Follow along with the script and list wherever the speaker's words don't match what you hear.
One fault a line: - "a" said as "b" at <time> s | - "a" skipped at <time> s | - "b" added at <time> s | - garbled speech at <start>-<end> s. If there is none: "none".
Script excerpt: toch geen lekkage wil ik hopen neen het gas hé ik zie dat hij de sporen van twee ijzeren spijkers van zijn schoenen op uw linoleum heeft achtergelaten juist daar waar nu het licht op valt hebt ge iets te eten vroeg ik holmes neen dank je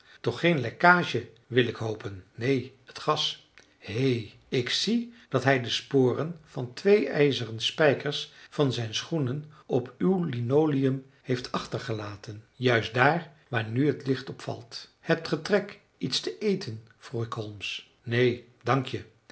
- "trek" added at 15.4 s